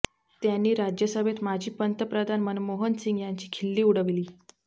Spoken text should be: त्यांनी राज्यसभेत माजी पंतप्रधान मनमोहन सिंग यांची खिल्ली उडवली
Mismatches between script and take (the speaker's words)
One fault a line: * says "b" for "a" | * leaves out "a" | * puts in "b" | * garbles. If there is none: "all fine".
all fine